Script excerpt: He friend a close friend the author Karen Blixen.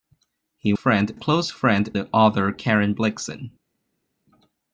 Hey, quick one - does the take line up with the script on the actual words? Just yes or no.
yes